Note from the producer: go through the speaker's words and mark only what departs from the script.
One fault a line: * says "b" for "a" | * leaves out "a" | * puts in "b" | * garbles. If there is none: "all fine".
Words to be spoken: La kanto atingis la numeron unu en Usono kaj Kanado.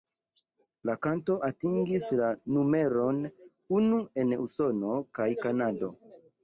all fine